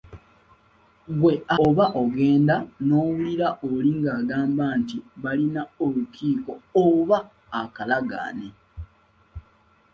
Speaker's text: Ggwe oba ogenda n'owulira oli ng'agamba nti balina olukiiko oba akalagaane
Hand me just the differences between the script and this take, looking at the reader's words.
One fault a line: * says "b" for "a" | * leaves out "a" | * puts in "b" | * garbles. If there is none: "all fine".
all fine